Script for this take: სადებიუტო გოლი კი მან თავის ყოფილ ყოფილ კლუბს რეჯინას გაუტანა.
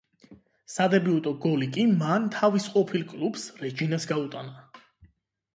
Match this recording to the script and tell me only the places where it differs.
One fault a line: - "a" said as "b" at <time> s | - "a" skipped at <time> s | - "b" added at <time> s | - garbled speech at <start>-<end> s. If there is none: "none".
- "ყოფილ" skipped at 3.0 s